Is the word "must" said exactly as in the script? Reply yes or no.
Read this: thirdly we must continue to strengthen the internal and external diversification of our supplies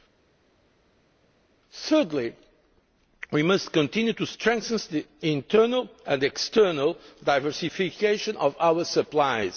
yes